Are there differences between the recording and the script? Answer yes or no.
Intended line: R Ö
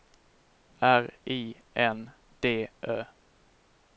yes